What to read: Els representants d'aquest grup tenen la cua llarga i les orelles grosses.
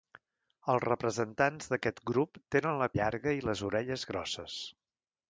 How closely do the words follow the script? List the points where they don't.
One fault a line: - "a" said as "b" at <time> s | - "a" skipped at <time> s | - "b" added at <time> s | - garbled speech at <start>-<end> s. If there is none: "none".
- "cua" skipped at 2.9 s